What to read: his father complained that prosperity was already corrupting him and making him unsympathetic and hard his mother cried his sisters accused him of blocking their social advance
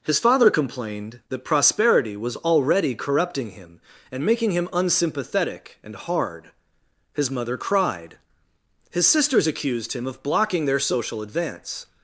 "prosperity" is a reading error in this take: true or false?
false